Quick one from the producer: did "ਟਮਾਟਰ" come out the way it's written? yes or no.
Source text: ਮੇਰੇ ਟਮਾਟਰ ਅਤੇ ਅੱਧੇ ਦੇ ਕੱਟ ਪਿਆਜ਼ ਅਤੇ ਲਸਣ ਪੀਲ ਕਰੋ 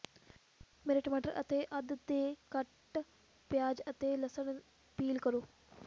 yes